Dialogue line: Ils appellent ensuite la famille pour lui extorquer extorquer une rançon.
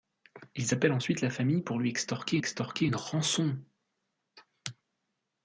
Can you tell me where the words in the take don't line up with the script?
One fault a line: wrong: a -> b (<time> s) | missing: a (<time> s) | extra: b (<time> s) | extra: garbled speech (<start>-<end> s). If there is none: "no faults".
no faults